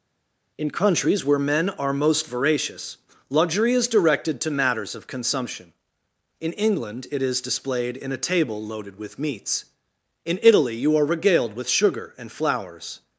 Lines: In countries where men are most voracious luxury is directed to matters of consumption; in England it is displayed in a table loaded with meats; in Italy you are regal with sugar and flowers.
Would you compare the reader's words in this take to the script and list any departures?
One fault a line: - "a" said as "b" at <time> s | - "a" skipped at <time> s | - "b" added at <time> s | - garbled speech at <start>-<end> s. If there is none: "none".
- "regal" said as "regaled" at 11.0 s